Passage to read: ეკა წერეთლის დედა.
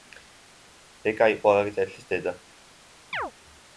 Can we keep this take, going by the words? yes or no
no